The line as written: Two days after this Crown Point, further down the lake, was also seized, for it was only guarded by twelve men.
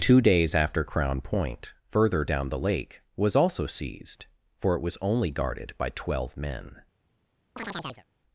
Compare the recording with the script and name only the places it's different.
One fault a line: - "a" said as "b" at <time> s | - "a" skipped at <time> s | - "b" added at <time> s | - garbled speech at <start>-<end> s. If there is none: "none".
- "this" skipped at 0.8 s